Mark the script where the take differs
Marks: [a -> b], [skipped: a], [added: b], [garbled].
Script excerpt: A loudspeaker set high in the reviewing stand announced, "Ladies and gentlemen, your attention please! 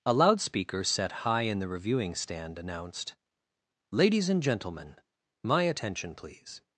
A loudspeaker set high in the reviewing stand announced, "Ladies and gentlemen, [your -> my] attention please!